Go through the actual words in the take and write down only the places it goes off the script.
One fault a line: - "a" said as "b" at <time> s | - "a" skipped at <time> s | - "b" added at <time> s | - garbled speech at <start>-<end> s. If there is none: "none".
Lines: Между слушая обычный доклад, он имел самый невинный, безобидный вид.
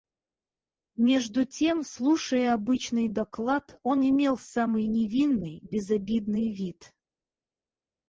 - "тем" added at 1.4 s